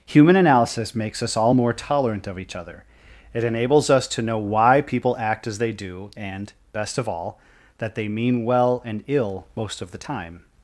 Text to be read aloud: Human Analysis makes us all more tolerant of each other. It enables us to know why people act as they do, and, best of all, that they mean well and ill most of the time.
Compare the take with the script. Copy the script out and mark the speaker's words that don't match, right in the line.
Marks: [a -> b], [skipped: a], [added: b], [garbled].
Human Analysis makes us all more tolerant of each other. It enables us to know why people act as they do, and, best of all, that they mean well and ill most of the time.